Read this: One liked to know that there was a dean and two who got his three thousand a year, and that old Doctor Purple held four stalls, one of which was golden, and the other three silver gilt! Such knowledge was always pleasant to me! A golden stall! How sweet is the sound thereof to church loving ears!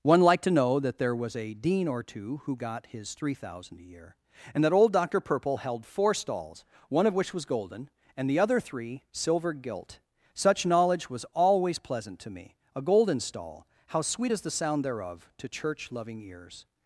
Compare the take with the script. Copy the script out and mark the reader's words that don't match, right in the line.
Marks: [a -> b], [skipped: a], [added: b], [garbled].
One liked to know that there was a dean [and -> or] two who got his three thousand a year, and that old Doctor Purple held four stalls, one of which was golden, and the other three silver gilt! Such knowledge was always pleasant to me! A golden stall! How sweet is the sound thereof to church loving ears!